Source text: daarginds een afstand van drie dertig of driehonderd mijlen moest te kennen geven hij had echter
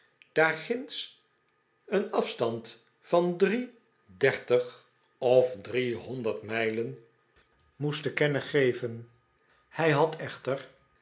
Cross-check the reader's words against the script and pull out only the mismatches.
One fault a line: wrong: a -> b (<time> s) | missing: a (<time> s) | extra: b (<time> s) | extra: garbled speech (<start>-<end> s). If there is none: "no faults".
no faults